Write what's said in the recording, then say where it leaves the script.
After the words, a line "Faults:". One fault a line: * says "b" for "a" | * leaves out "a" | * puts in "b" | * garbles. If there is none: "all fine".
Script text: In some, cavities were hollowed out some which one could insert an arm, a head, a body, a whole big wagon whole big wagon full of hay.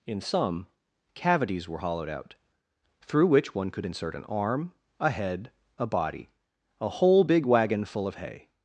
In some, cavities were hollowed out through which one could insert an arm, a head, a body, a whole big wagon full of hay.
Faults:
* says "through" for "some"
* leaves out "whole big wagon"